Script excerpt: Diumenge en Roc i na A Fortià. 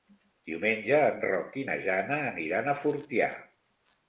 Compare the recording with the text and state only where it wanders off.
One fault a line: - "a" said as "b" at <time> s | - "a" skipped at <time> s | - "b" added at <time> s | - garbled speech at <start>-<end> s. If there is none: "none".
- "Jana aniran" added at 1.9 s